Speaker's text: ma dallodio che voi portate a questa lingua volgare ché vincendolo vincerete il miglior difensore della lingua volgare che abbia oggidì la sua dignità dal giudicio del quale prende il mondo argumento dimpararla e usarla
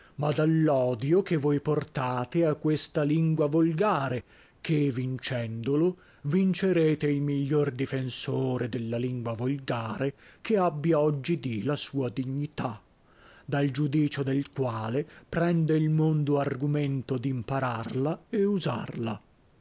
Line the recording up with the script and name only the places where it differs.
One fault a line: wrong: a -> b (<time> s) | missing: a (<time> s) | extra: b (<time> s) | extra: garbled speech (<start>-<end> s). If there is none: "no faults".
no faults